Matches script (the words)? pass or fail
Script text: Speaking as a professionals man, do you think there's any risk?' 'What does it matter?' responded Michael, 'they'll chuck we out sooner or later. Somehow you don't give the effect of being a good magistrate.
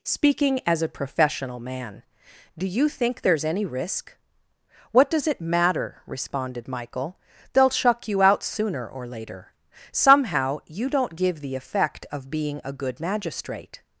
fail